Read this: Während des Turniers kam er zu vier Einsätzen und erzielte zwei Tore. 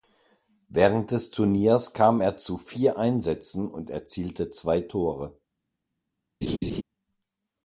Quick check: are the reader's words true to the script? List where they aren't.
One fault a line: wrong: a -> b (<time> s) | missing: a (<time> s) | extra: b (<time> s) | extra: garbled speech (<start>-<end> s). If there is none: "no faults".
no faults